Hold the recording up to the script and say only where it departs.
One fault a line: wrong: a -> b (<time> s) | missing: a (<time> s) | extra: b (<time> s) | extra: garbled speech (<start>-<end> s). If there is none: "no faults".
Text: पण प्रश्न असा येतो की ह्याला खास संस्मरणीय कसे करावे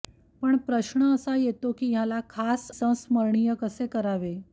no faults